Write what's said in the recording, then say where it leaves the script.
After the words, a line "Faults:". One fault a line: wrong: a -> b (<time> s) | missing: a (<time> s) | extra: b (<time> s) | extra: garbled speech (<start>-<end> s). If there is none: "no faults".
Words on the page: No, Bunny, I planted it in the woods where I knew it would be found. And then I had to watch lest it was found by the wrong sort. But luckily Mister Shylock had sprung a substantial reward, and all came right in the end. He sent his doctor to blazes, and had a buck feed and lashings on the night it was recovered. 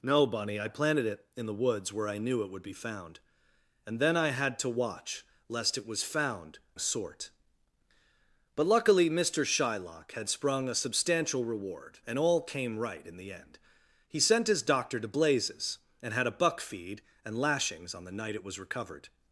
No, Bunny, I planted it in the woods where I knew it would be found. And then I had to watch lest it was found sort. But luckily Mister Shylock had sprung a substantial reward, and all came right in the end. He sent his doctor to blazes, and had a buck feed and lashings on the night it was recovered.
Faults:
missing: by the wrong (6.6 s)